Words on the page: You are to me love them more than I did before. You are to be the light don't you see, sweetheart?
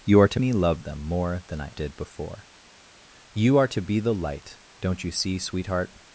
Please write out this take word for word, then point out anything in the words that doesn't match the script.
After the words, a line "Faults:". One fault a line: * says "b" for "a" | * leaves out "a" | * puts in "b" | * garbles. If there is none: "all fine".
You are to me love them more than I did before. You are to be the light don't you see, sweetheart?
Faults:
all fine